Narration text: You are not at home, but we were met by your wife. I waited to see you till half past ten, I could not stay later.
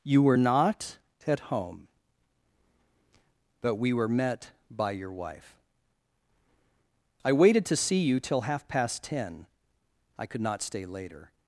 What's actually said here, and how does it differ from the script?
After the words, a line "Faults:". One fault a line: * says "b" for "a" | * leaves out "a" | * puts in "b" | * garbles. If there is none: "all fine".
You were not at home, but we were met by your wife. I waited to see you till half past ten, I could not stay later.
Faults:
* says "were" for "are"